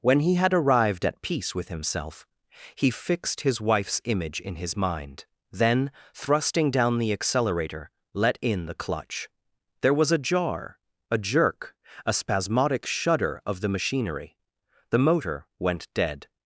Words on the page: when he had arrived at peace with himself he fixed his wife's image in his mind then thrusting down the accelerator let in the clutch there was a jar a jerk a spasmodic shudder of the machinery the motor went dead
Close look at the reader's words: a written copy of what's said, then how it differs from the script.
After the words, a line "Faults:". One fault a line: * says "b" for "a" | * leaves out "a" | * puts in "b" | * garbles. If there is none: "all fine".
when he had arrived at peace with himself he fixed his wife's image in his mind then thrusting down the accelerator let in the clutch there was a jar a jerk a spasmodic shudder of the machinery the motor went dead
Faults:
all fine